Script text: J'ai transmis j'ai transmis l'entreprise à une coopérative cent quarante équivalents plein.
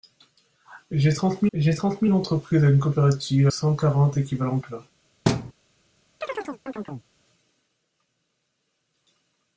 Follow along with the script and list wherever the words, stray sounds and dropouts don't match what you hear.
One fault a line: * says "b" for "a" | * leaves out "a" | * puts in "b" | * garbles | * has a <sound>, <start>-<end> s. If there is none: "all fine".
* has a thud, 5.3-5.5 s
* has a chirp, 6.2-7.1 s